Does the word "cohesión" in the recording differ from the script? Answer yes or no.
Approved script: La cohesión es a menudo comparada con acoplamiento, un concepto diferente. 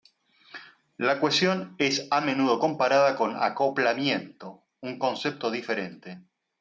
no